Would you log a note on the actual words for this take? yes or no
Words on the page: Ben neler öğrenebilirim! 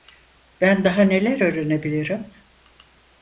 yes